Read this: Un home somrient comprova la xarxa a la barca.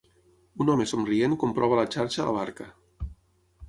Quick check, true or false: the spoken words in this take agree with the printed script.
true